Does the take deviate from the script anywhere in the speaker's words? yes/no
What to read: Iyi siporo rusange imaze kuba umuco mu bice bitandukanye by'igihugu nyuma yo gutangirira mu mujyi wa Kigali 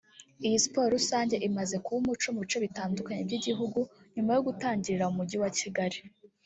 no